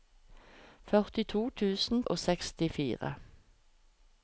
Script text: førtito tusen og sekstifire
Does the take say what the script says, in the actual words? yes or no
yes